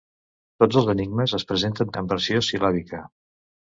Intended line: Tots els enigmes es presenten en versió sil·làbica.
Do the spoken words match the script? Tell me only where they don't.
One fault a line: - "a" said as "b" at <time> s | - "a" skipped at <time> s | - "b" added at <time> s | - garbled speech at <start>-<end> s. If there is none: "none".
none